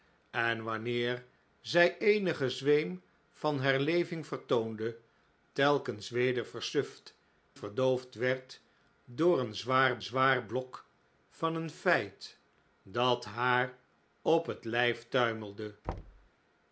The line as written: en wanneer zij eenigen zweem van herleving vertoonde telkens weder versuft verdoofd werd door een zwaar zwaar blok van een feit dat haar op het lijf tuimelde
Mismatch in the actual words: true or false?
false